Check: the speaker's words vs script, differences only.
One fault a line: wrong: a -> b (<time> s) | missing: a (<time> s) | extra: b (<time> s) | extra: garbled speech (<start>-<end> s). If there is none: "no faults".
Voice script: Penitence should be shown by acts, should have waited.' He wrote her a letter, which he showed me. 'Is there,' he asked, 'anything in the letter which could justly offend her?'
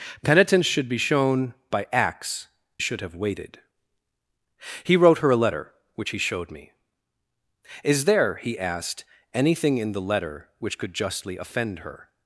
no faults